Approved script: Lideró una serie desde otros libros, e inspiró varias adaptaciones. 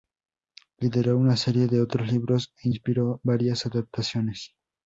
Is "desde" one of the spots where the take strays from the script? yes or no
yes